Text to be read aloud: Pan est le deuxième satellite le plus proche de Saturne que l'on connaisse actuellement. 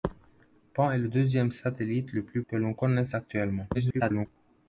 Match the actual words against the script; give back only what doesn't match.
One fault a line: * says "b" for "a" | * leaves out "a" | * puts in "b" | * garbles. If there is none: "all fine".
* leaves out "proche de Saturne"
* garbles